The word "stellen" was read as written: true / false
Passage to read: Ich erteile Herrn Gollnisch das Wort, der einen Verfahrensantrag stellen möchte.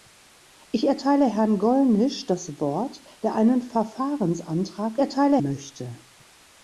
false